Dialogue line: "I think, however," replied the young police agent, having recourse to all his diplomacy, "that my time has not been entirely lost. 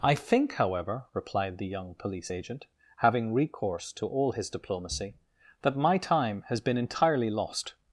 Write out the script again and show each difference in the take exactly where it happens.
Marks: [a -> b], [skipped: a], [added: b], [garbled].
"I think, however," replied the young police agent, having recourse to all his diplomacy, "that my time has [skipped: not] been entirely lost.